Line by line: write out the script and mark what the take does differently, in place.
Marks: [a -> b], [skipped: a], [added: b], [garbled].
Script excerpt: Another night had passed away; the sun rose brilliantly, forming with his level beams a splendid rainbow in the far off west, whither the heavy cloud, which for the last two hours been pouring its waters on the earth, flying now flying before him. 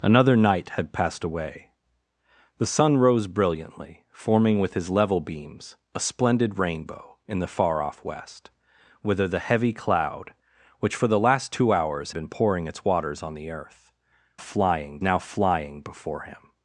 Another night had passed away; the sun rose brilliantly, forming with his level beams a splendid rainbow in the far off west, whither the heavy cloud, which for the last two hours been pouring its waters on the earth, flying now flying before him.